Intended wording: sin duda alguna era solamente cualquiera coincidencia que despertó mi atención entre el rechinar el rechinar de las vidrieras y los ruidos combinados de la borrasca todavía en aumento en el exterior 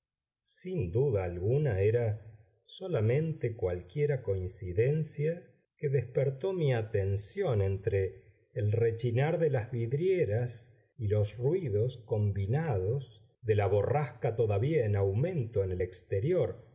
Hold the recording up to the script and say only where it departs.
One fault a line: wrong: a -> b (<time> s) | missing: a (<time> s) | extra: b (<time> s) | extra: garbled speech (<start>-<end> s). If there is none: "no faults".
missing: el rechinar (9.4 s)